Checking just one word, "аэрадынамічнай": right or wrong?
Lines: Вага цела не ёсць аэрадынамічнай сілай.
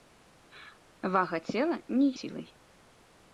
wrong